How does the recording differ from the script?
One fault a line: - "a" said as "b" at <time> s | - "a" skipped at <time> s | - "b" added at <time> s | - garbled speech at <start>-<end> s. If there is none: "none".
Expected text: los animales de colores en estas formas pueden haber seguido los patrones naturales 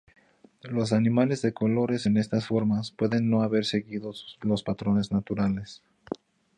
- "no" added at 3.3 s